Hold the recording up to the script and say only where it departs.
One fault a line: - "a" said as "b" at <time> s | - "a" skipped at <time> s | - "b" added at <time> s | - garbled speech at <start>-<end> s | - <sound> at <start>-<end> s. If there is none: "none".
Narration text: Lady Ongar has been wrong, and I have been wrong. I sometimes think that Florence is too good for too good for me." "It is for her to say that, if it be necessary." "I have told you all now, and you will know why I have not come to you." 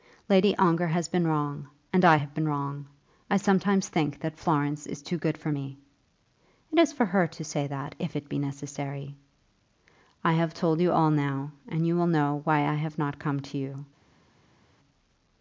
- "too good for" skipped at 5.5 s